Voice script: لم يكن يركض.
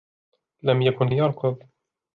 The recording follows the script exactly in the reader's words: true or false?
true